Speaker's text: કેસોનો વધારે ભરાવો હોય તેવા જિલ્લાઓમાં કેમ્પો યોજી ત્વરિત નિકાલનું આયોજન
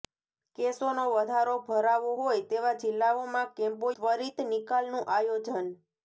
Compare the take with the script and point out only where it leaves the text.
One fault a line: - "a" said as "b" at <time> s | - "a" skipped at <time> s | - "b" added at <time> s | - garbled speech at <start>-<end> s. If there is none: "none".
- "યોજી" skipped at 3.9 s